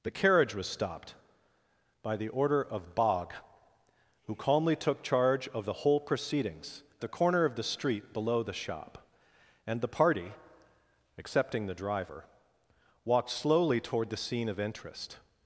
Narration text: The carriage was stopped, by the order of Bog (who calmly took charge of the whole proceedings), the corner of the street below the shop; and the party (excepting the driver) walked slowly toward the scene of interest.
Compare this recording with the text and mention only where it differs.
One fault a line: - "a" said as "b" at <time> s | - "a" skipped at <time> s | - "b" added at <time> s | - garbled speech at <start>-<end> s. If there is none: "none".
none